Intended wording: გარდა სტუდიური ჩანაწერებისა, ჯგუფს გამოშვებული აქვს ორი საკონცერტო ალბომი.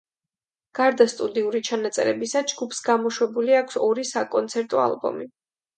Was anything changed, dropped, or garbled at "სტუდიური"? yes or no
no